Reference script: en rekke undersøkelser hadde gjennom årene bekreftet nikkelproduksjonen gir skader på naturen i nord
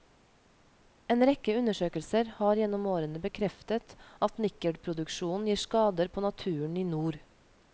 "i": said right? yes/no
yes